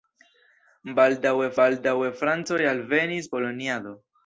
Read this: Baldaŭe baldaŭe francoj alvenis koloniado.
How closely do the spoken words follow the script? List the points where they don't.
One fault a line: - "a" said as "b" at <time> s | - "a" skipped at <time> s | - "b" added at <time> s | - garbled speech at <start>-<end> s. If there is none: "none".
none